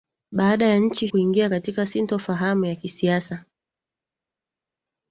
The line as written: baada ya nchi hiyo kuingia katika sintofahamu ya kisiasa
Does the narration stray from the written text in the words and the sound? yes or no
yes